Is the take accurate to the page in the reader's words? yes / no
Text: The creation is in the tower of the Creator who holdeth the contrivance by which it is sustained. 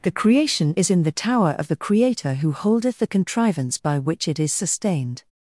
yes